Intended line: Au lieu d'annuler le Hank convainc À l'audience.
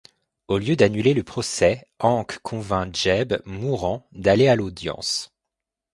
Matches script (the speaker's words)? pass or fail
fail